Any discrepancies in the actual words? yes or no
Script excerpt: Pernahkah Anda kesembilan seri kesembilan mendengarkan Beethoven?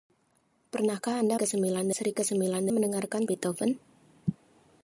no